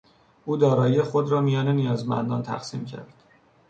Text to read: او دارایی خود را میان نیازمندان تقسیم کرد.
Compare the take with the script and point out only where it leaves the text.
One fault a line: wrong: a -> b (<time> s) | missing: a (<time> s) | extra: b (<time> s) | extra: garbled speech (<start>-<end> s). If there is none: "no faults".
no faults